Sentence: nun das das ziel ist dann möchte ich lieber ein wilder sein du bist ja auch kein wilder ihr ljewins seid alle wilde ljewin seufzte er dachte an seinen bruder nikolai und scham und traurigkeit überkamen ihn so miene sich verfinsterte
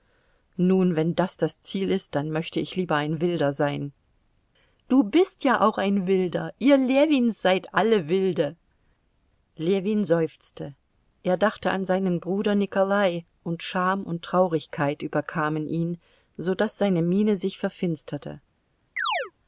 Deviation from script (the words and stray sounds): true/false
true